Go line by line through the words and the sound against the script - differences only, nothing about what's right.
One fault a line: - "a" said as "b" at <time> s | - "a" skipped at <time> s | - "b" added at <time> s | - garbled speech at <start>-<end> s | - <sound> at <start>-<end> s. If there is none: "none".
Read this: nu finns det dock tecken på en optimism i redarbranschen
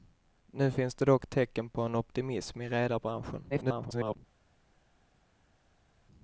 - garbled speech at 3.5-4.2 s